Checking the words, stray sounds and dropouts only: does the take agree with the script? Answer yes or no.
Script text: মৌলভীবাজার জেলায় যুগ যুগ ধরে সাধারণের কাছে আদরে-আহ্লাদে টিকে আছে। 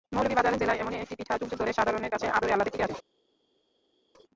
no